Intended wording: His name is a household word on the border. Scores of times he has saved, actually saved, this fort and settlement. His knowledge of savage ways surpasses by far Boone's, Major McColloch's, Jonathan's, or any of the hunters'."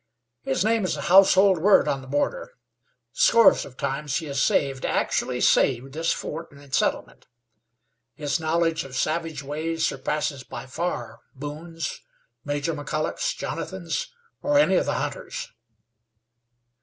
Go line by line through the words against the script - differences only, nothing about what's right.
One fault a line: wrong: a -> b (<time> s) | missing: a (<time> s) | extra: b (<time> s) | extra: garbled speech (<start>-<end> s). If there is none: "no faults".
no faults